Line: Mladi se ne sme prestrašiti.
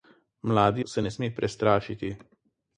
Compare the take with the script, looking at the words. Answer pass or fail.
pass